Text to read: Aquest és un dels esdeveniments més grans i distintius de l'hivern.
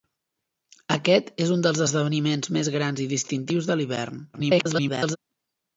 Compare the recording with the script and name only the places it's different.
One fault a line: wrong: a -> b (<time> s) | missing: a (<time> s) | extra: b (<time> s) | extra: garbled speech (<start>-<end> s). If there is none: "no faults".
extra: garbled speech (4.3-5.2 s)